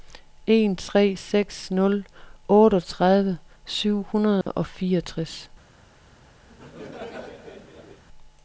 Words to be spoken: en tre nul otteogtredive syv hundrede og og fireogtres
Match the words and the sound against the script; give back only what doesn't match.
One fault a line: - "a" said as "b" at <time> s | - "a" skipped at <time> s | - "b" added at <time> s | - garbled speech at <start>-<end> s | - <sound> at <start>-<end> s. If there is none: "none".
- "seks" added at 1.1 s
- dropout at 4.4-4.5 s
- "og" skipped at 4.7 s
- laugh at 6.5-8.0 s